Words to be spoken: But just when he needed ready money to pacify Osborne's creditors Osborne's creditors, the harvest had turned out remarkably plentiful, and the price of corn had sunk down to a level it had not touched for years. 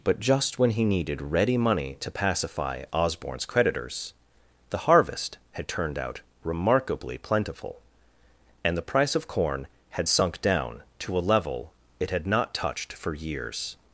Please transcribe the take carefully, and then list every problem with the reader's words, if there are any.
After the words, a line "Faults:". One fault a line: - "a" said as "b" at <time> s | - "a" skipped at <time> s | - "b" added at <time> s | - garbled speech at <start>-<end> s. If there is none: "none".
But just when he needed ready money to pacify Osborne's creditors, the harvest had turned out remarkably plentiful, and the price of corn had sunk down to a level it had not touched for years.
Faults:
- "Osborne's creditors" skipped at 4.1 s